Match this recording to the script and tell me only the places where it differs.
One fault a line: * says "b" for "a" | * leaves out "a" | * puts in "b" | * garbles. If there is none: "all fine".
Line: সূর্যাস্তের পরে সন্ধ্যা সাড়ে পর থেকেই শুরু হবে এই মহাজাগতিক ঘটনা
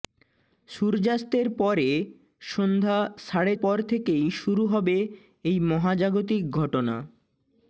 all fine